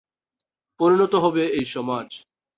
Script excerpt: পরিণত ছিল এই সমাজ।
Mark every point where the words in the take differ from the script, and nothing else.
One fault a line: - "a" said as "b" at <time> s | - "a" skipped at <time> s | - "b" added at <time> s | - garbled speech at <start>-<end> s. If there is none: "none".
- "ছিল" said as "হবে" at 1.2 s